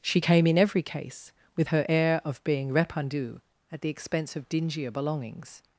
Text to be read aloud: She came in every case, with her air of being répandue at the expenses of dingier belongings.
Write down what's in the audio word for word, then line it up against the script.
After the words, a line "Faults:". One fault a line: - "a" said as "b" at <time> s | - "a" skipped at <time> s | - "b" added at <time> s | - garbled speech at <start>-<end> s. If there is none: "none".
She came in every case, with her air of being répandue at the expense of dingier belongings.
Faults:
- "expenses" said as "expense" at 3.9 s